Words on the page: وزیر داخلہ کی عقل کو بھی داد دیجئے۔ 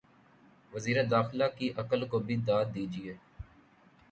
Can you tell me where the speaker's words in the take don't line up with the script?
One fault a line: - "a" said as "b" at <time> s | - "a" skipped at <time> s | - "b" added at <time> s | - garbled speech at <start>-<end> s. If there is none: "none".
none